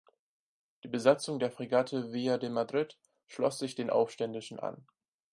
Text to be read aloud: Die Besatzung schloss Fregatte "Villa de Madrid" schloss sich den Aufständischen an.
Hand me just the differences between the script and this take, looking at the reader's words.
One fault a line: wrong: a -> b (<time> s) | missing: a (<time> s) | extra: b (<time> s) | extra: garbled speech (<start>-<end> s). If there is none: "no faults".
wrong: schloss -> der (1.4 s)